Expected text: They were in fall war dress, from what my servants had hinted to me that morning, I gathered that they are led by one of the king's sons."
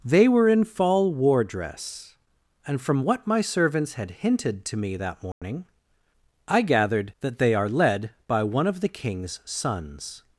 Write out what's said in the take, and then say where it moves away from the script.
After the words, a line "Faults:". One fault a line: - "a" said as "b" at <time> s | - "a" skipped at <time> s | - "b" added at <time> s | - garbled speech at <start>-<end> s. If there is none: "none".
They were in fall war dress, and from what my servants had hinted to me that morning, I gathered that they are led by one of the king's sons."
Faults:
- "and" added at 2.6 s